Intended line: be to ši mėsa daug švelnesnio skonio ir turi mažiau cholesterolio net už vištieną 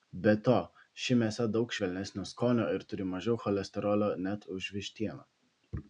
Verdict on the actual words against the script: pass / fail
pass